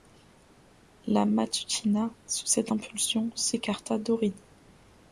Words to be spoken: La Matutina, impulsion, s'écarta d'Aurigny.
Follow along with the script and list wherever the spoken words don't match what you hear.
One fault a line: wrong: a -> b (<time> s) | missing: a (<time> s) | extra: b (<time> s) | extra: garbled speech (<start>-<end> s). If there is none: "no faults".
extra: sous cette (2.2 s)